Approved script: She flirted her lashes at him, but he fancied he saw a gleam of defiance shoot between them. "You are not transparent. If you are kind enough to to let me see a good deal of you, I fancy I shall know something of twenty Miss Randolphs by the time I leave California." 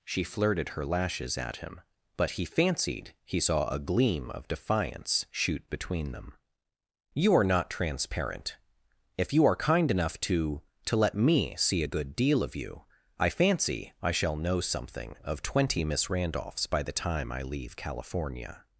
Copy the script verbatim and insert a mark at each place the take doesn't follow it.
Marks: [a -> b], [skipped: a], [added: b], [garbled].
She flirted her lashes at him, but he fancied he saw a gleam of defiance shoot between them. "You are not transparent. If you are kind enough to to let me see a good deal of you, I fancy I shall know something of twenty Miss Randolphs by the time I leave California."